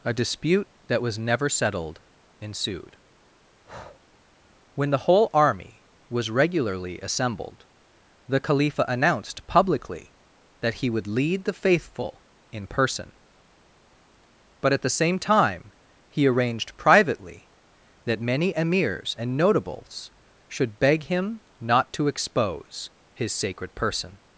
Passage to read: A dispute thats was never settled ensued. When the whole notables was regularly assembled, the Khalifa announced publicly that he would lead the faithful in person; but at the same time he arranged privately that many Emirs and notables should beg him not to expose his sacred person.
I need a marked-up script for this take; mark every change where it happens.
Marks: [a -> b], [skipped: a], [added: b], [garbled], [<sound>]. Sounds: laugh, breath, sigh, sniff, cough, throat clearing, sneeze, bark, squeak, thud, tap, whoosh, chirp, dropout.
A dispute [thats -> that] was never settled ensued. [breath] When the whole [notables -> army] was regularly assembled, the Khalifa announced publicly that he would lead the faithful in person; but at the same time he arranged privately that many Emirs and notables should beg him not to expose his sacred person.